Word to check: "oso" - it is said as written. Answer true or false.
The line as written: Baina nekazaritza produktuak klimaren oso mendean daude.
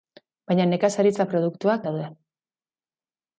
false